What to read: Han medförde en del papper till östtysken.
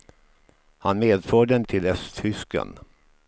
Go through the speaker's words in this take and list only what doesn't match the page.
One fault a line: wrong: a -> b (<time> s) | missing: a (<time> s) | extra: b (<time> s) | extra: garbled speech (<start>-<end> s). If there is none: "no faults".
missing: del papper (1.6 s)